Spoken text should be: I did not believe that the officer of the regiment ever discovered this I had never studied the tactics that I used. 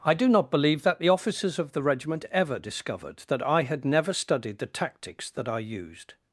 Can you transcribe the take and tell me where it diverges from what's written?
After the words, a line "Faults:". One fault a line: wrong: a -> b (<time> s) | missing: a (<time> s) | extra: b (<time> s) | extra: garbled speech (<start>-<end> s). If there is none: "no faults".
I do not believe that the officers of the regiment ever discovered that I had never studied the tactics that I used.
Faults:
wrong: did -> do (0.1 s)
wrong: officer -> officers (1.1 s)
wrong: this -> that (3.3 s)